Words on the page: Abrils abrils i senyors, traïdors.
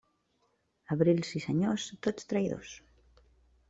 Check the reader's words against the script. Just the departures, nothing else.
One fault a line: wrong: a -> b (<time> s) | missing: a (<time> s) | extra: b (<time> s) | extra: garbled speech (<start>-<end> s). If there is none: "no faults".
missing: abrils (1.3 s)
extra: tots (2.1 s)